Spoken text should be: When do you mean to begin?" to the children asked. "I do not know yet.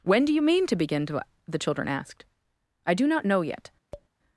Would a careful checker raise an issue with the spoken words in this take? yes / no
no